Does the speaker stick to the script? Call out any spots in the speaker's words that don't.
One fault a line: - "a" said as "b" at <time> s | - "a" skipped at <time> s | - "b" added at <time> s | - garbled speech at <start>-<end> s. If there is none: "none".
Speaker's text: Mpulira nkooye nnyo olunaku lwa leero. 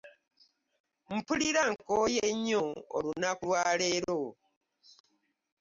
none